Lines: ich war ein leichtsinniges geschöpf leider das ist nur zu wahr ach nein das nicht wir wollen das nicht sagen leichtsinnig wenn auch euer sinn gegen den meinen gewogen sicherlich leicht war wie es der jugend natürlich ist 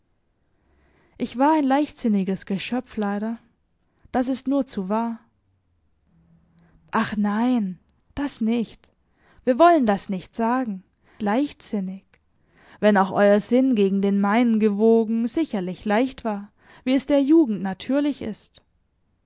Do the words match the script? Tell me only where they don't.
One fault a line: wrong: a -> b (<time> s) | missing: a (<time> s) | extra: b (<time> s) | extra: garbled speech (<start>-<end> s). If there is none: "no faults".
no faults